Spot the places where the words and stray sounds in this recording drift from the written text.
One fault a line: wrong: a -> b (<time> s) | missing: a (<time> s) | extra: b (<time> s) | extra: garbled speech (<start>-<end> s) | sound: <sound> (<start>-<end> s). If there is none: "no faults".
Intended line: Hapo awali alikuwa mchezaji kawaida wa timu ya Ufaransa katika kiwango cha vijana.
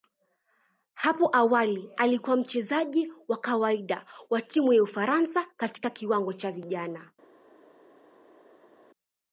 extra: wa (3.3 s)